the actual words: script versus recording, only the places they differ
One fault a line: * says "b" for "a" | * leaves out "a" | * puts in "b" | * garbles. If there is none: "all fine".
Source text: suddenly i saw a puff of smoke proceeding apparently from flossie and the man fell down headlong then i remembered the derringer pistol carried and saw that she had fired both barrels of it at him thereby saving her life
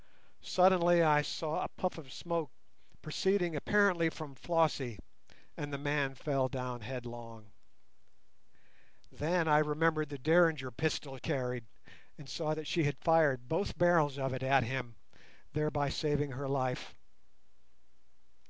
all fine